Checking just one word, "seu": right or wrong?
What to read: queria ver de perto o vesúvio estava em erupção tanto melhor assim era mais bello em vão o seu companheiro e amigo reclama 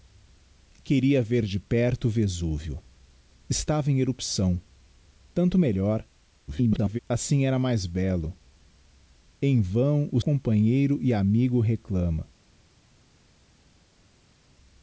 wrong